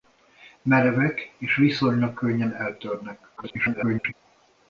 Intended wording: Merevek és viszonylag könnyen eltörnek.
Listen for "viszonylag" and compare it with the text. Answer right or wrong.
right